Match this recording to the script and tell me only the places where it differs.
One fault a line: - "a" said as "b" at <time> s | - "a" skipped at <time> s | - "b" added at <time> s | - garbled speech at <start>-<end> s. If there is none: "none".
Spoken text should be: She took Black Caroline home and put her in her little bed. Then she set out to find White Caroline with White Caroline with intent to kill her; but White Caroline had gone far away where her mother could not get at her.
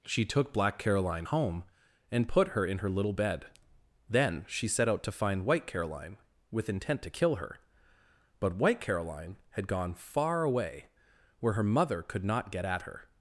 - "White Caroline with" skipped at 6.7 s